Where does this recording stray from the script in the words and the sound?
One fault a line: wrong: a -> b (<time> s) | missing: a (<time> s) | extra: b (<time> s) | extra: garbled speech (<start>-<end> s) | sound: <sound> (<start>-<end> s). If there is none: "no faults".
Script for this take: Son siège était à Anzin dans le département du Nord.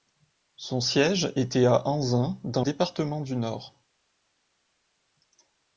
missing: le (2.6 s)